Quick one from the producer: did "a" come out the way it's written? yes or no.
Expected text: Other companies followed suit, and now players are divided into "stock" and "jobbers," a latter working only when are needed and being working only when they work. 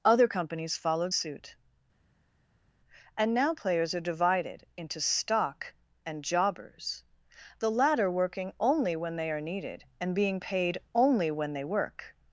no